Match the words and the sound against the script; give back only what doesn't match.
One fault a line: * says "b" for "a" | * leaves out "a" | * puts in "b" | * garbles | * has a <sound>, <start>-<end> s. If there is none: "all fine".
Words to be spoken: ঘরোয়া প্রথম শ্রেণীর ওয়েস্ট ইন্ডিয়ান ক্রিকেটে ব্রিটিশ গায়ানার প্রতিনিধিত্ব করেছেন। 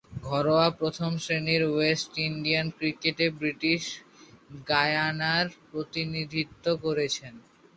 all fine